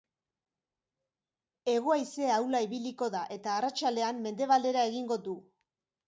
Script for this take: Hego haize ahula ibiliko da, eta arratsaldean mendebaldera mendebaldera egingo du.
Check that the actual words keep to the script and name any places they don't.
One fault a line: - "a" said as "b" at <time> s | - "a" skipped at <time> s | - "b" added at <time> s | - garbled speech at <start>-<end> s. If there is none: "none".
- "mendebaldera" skipped at 4.8 s